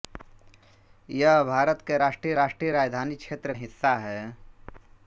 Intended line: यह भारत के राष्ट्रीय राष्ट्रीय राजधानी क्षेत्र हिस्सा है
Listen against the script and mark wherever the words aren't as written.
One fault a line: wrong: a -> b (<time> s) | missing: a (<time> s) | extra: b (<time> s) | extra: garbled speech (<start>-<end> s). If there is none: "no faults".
no faults